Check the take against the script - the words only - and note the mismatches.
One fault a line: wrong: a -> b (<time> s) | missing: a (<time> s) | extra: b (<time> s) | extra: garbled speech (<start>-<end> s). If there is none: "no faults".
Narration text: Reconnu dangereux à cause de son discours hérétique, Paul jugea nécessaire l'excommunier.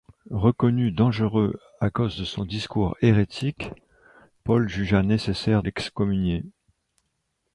no faults